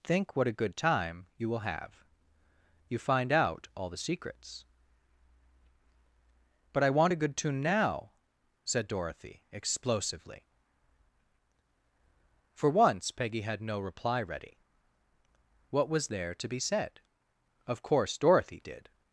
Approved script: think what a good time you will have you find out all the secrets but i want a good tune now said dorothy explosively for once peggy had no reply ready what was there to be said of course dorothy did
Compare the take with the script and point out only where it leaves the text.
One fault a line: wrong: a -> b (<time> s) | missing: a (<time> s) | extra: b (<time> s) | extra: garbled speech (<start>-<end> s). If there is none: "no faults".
no faults